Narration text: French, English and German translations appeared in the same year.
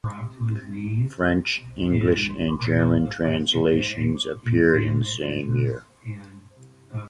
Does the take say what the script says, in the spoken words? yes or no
yes